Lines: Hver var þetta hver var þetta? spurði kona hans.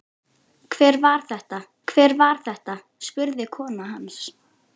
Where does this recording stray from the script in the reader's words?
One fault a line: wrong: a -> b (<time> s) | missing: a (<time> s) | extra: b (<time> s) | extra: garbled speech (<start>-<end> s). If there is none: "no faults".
no faults